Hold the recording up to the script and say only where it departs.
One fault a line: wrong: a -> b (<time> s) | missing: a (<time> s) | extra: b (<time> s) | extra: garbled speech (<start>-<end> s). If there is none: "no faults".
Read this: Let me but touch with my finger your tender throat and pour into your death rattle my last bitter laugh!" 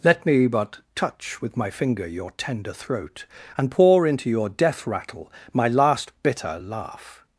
no faults